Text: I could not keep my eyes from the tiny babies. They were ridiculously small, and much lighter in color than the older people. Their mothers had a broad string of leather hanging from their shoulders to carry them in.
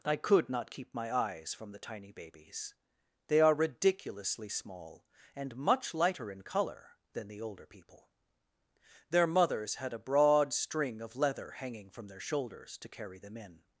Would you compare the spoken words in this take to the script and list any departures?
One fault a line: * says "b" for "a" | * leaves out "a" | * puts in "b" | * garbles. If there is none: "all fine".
* says "are" for "were"